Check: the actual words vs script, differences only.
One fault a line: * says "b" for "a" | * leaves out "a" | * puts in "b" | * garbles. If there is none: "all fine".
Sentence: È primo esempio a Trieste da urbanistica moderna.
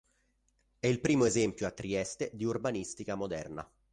* puts in "il"
* says "di" for "da"